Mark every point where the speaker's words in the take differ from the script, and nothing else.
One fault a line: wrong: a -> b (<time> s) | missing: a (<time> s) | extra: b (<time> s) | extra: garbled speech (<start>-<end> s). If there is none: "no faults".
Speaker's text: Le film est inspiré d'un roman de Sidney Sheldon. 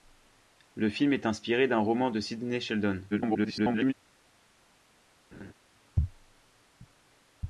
extra: garbled speech (3.1-3.9 s)